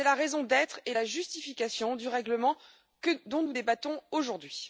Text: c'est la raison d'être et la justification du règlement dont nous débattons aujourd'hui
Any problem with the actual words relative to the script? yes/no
no